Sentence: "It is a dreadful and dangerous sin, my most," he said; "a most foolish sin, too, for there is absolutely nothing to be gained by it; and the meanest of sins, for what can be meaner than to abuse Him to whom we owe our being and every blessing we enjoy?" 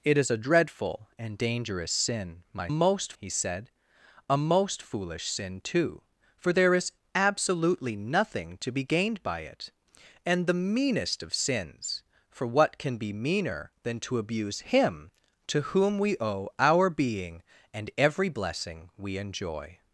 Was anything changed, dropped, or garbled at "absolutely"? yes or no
no